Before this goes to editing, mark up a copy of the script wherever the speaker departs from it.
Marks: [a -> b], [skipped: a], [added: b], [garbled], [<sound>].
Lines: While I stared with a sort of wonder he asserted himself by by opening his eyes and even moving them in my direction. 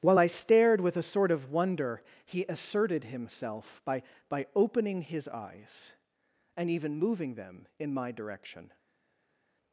While I stared with a sort of wonder he asserted himself by by opening his eyes and even moving them in my direction.